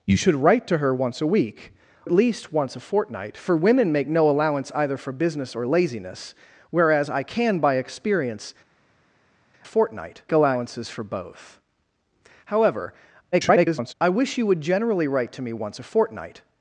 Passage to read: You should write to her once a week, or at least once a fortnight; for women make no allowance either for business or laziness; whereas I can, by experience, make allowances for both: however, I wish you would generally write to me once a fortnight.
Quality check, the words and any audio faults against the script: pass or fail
fail